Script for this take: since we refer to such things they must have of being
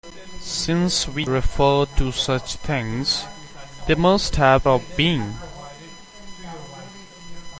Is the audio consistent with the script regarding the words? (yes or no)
yes